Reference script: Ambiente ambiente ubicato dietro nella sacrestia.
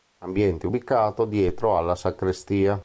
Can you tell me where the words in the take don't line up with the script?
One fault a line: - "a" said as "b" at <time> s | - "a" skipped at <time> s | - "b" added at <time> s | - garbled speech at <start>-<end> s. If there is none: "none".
- "ambiente" skipped at 0.7 s
- "nella" said as "alla" at 1.8 s